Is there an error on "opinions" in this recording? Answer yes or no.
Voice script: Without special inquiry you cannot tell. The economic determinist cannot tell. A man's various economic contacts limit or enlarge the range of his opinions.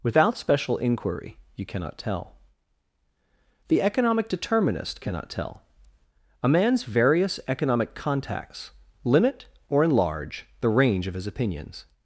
no